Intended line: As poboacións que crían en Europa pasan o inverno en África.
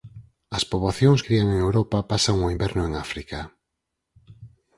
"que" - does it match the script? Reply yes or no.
no